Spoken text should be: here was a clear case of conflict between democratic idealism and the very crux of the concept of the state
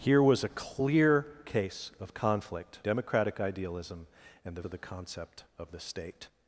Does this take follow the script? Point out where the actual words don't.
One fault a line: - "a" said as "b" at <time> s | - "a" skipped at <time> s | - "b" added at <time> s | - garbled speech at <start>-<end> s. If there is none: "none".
- "between" skipped at 2.8 s
- "very crux" skipped at 4.6 s